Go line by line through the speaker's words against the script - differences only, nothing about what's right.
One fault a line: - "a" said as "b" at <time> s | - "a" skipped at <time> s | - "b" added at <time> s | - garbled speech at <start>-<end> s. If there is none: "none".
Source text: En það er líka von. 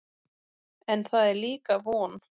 none